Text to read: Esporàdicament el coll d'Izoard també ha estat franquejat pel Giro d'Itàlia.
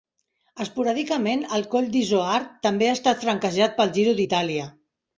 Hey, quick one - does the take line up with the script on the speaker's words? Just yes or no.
yes